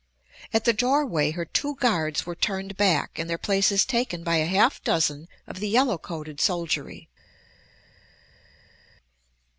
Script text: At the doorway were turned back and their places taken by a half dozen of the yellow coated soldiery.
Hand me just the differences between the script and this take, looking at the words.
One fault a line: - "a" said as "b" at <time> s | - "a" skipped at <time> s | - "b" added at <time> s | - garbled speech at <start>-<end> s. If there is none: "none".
- "her two guards" added at 1.3 s